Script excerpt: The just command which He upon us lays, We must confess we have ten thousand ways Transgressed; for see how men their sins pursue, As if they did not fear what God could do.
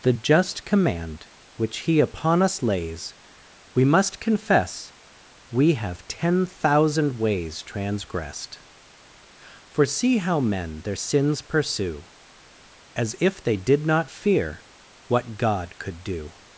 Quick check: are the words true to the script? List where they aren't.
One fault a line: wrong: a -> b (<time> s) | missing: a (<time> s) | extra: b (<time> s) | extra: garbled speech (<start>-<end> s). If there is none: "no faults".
no faults